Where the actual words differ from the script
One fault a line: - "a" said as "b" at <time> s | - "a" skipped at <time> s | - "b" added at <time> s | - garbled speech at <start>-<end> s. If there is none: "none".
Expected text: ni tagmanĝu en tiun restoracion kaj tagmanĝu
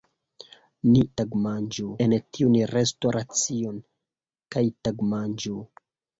none